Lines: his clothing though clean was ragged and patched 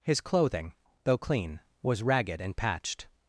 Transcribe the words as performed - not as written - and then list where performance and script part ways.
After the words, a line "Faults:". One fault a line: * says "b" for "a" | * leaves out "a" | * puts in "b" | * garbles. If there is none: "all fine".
his clothing though clean was ragged and patched
Faults:
all fine